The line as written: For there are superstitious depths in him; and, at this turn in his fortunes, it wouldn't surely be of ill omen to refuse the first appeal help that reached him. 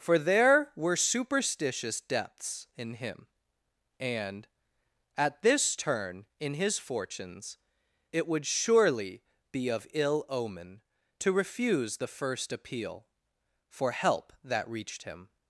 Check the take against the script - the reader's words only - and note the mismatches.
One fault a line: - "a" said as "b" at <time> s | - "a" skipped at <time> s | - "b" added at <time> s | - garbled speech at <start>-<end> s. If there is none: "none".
- "are" said as "were" at 0.8 s
- "wouldn't" said as "would" at 8.2 s
- "for" added at 13.7 s